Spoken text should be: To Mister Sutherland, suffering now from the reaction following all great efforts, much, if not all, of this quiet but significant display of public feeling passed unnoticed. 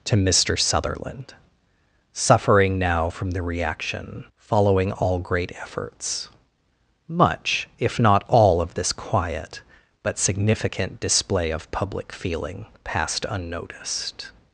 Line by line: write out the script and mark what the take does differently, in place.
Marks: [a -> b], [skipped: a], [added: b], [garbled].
To Mister Sutherland, suffering now from the reaction following all great efforts, much, if not all, of this quiet but significant display of public feeling passed unnoticed.